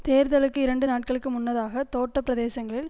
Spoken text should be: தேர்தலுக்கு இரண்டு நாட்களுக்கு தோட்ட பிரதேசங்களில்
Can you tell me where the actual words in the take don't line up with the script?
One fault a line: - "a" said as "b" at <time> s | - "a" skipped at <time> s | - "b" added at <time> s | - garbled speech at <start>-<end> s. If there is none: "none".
- "முன்னதாக" added at 1.3 s